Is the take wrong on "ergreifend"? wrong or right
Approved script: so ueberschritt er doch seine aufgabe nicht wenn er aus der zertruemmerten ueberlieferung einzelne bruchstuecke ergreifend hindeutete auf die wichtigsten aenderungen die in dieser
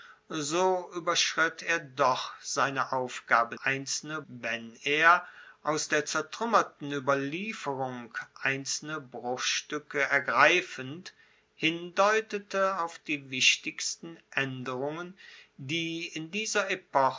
right